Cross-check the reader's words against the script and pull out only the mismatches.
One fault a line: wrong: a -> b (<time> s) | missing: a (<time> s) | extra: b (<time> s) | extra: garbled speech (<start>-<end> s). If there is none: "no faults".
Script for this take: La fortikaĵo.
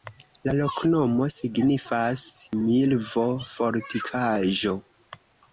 extra: loknomo signifas milvo (0.6 s)